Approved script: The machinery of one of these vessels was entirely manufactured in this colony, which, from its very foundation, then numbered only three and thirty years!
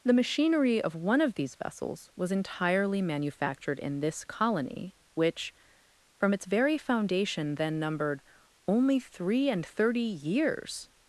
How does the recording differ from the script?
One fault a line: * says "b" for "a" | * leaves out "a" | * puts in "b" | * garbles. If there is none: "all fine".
all fine